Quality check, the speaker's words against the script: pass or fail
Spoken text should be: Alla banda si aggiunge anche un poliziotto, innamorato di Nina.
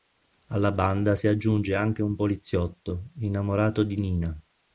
pass